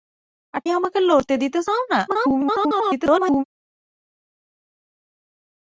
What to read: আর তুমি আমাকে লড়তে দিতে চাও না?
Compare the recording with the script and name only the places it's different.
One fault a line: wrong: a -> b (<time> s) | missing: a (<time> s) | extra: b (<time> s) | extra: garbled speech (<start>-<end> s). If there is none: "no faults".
missing: তুমি (0.6 s)
extra: garbled speech (2.1-3.4 s)